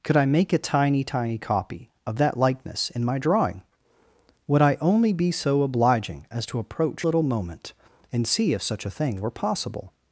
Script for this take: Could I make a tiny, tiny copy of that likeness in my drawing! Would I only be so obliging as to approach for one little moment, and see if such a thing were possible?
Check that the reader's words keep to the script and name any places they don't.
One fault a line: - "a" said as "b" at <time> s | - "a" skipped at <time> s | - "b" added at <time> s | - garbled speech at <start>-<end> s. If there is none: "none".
- "for one" skipped at 7.0 s